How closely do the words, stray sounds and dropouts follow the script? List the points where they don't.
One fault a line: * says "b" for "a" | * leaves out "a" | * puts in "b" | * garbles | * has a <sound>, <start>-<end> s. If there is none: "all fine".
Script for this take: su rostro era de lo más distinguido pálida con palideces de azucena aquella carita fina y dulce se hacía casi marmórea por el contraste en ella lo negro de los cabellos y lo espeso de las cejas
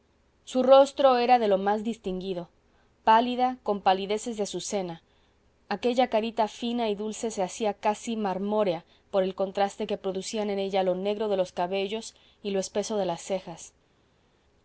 * puts in "que producían"